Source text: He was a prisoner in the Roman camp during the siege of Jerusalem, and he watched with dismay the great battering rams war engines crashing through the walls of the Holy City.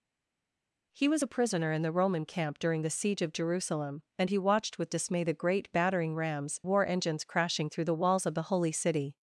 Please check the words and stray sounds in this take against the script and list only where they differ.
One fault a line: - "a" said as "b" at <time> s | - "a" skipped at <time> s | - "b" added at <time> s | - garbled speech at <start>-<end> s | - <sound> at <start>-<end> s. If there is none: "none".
none